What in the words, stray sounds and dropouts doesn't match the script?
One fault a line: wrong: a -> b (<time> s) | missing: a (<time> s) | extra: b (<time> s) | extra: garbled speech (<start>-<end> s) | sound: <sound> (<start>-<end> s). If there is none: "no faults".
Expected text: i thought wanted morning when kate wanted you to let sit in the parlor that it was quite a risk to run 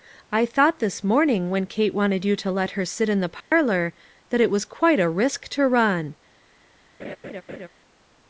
wrong: wanted -> this (0.8 s)
extra: her (2.7 s)
sound: dropout (3.4-3.5 s)
sound: laugh (7.0-7.7 s)